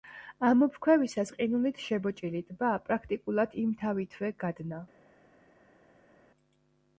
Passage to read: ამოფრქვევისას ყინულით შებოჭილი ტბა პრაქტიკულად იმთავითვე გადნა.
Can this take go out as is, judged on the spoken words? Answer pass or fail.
pass